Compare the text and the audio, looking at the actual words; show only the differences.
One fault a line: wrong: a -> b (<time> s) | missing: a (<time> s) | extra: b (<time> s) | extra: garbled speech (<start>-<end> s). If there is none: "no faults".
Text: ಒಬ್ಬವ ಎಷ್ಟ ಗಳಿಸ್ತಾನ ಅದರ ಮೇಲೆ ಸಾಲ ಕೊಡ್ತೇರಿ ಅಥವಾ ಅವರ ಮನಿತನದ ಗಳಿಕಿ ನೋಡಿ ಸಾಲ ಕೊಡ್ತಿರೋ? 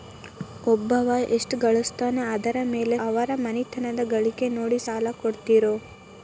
missing: ಸಾಲ ಕೊಡ್ತೇರಿ ಅಥವಾ (3.0 s)